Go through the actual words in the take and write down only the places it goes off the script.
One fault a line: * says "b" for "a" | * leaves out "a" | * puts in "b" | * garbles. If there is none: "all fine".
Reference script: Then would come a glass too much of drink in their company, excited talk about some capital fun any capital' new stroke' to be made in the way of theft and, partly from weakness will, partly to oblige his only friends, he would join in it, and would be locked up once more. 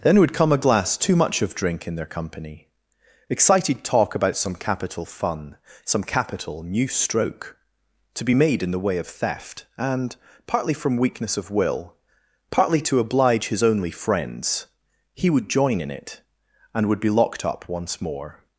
* says "some" for "any"
* puts in "of"